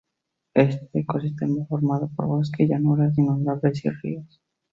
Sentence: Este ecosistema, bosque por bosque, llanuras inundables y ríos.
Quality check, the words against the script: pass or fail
fail